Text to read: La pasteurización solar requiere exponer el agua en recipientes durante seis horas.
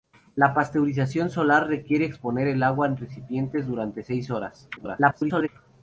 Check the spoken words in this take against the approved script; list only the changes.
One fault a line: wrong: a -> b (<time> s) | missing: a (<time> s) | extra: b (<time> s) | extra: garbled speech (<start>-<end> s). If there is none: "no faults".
extra: garbled speech (4.8-5.5 s)